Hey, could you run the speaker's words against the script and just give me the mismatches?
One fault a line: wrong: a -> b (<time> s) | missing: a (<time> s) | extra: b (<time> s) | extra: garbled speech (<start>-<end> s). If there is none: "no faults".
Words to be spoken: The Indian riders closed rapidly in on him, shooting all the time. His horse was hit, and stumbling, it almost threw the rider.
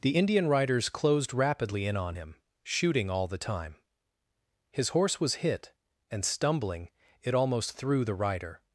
no faults